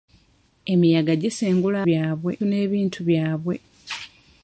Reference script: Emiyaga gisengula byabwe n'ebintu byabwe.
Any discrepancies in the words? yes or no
no